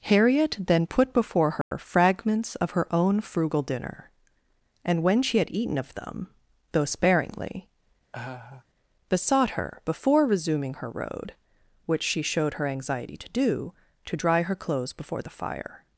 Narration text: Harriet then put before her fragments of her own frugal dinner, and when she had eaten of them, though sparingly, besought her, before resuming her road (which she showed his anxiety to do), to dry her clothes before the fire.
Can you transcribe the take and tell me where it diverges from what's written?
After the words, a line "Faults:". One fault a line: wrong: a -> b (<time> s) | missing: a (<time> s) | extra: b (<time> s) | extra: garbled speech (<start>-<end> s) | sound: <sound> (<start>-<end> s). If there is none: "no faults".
Harriet then put before her fragments of her own frugal dinner, and when she had eaten of them, though sparingly, besought her, before resuming her road (which she showed her anxiety to do), to dry her clothes before the fire.
Faults:
sound: dropout (1.6-1.7 s)
sound: laugh (8.1-8.7 s)
wrong: his -> her (12.5 s)